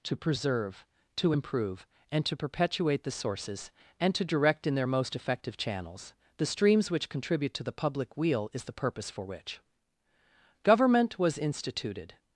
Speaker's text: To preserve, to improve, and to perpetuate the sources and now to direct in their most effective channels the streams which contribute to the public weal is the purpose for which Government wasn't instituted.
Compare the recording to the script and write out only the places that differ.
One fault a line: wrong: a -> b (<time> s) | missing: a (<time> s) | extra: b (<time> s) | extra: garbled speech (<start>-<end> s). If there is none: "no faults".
missing: now (4.1 s)
wrong: wasn't -> was (11.2 s)